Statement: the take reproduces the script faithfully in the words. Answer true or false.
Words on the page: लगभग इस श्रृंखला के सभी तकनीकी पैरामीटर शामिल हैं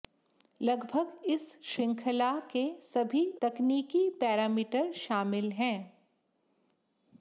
true